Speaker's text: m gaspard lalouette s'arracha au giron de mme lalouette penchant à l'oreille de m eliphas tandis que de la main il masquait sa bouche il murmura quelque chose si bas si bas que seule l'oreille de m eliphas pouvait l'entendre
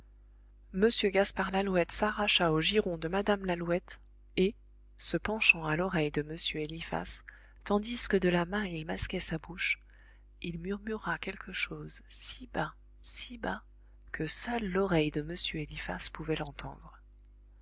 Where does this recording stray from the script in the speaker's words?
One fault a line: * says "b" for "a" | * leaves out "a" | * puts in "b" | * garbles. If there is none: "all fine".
* puts in "et se"